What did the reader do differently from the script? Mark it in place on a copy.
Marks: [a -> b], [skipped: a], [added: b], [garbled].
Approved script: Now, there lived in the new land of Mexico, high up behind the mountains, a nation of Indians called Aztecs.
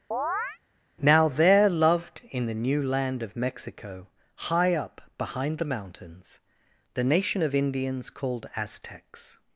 Now, there [lived -> loved] in the new land of Mexico, high up behind the mountains, [a -> the] nation of Indians called Aztecs.